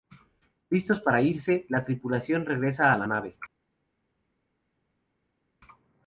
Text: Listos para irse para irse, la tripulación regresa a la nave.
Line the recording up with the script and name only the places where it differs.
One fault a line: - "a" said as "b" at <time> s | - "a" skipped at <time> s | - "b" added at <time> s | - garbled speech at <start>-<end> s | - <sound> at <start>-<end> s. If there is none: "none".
- "para irse" skipped at 1.7 s